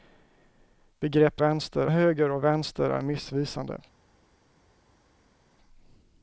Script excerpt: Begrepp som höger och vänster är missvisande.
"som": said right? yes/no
no